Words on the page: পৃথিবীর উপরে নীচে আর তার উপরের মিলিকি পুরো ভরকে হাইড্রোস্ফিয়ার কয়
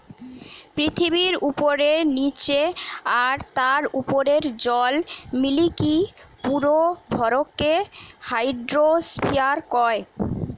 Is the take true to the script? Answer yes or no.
no